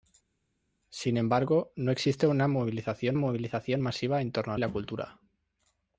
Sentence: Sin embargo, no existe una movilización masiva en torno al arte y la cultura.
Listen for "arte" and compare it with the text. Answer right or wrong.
wrong